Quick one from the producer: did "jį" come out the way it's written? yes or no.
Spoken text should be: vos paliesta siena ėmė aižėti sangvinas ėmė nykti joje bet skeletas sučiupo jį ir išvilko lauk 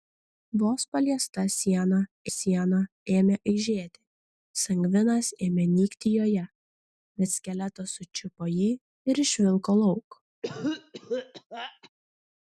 yes